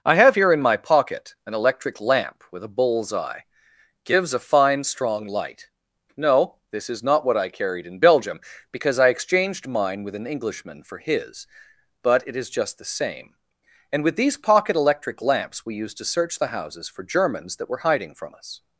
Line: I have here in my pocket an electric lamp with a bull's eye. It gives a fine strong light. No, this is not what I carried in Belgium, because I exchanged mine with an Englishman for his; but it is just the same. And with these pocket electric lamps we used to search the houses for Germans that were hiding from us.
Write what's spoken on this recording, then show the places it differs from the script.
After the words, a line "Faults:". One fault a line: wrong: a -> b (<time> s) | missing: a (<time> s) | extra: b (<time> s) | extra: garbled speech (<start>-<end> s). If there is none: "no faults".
I have here in my pocket an electric lamp with a bull's eye. gives a fine strong light. No, this is not what I carried in Belgium, because I exchanged mine with an Englishman for his; but it is just the same. And with these pocket electric lamps we used to search the houses for Germans that were hiding from us.
Faults:
missing: It (3.4 s)